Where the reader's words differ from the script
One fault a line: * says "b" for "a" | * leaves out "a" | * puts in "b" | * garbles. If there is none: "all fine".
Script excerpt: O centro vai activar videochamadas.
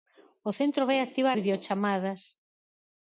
all fine